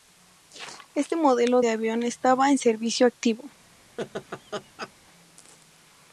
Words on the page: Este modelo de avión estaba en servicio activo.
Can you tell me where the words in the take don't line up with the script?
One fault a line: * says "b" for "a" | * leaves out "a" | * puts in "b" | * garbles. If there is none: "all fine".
all fine